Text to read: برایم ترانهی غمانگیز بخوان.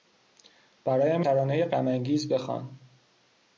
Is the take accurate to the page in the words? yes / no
yes